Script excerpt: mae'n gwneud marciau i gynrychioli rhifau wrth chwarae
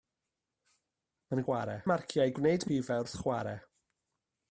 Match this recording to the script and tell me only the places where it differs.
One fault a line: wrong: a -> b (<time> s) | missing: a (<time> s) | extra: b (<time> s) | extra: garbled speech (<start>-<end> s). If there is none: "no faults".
wrong: gwneud -> chwarae (1.4 s)
wrong: gynrychioli -> gwneud (2.4 s)